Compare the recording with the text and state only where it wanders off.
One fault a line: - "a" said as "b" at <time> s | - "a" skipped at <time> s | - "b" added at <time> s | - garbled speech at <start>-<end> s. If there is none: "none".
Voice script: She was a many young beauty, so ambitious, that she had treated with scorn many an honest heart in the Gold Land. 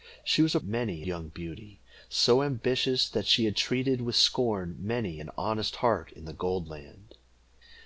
none